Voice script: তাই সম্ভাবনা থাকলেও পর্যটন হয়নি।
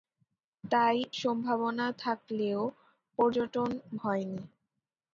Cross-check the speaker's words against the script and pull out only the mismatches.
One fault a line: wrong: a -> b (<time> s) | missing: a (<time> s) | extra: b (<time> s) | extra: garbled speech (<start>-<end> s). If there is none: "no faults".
no faults